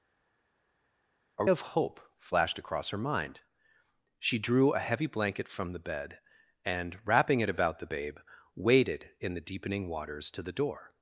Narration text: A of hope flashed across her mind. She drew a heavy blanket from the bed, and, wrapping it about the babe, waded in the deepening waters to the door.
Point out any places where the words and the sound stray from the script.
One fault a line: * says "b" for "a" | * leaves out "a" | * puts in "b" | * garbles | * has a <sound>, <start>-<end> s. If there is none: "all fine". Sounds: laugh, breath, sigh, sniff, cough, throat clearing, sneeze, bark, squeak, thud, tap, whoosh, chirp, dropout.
all fine